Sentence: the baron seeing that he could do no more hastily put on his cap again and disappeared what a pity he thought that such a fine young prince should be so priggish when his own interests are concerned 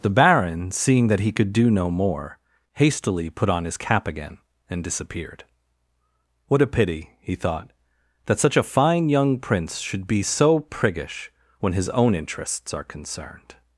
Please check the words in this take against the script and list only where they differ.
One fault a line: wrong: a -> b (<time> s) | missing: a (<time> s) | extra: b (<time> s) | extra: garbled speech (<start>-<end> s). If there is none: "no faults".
no faults